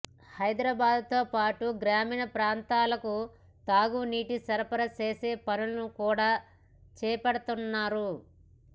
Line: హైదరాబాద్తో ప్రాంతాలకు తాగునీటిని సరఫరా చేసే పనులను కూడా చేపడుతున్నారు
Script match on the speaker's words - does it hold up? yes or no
no